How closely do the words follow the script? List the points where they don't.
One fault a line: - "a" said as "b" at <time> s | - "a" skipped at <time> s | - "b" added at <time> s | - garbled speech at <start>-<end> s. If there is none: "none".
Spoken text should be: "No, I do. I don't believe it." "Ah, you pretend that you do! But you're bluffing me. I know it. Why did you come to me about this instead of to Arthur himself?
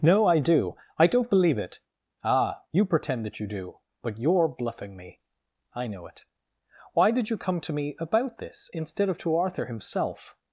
none